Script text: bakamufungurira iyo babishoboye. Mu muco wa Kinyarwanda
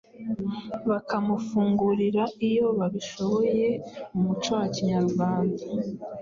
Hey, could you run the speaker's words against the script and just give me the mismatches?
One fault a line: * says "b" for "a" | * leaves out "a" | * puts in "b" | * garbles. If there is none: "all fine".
all fine